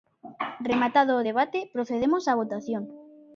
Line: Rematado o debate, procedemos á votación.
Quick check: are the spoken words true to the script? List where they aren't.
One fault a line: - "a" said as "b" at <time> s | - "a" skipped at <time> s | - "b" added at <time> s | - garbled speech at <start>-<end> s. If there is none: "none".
none